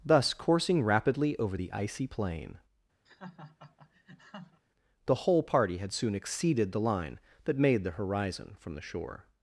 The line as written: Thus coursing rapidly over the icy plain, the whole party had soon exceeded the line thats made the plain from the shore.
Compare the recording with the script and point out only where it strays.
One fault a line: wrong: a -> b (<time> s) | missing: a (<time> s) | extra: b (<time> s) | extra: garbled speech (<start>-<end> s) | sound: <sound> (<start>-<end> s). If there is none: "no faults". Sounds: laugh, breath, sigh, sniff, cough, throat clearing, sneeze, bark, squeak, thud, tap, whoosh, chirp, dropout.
sound: laugh (3.1-4.6 s)
wrong: thats -> that (7.4 s)
wrong: plain -> horizon (8.0 s)